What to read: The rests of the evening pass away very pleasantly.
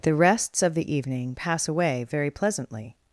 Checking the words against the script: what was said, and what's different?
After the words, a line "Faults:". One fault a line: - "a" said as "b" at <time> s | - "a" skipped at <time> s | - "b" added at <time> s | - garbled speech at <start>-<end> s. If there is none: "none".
The rests of the evening pass away very pleasantly.
Faults:
none